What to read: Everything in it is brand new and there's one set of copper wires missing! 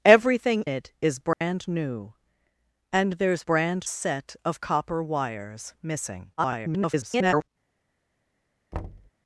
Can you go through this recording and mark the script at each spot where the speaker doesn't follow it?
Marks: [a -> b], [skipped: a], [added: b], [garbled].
Everything [skipped: in] it is brand new and there's [one -> brand] set of copper wires missing! [garbled]